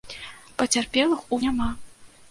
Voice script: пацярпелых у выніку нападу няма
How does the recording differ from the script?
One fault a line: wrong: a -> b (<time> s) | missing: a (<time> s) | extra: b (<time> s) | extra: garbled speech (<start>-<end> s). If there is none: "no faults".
missing: выніку нападу (1.4 s)